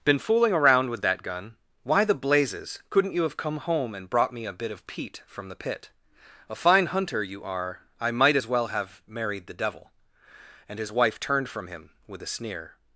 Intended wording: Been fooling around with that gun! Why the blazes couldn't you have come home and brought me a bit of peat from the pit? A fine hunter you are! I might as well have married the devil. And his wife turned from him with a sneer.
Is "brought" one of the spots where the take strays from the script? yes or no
no